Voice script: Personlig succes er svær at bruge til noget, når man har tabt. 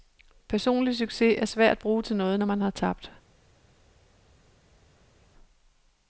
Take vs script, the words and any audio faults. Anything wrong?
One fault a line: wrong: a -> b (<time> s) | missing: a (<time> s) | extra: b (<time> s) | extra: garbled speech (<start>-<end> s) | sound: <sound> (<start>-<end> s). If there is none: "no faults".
no faults